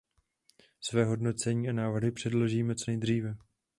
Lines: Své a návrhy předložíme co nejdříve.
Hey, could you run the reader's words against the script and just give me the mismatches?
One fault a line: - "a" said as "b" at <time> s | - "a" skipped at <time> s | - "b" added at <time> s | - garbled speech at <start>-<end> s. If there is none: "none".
- "hodnocení" added at 1.1 s